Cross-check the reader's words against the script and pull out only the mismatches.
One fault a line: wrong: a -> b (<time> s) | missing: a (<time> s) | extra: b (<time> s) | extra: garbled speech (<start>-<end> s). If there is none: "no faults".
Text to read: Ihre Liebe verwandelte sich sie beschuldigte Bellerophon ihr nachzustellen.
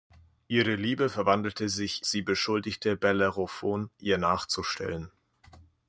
no faults